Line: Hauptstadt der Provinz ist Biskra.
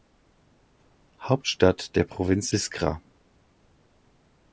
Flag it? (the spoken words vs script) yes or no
yes